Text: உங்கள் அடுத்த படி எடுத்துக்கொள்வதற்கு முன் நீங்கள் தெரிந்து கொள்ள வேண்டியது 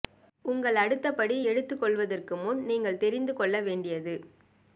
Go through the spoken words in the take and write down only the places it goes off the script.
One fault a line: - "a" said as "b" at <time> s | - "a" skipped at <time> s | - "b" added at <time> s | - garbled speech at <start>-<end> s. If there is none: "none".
none